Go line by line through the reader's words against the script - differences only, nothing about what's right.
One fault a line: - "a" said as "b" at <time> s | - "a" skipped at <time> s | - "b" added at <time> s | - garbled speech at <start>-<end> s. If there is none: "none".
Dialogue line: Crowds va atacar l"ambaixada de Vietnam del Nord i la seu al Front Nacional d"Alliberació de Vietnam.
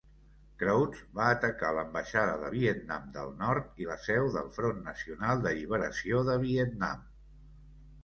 - "al" said as "del" at 4.4 s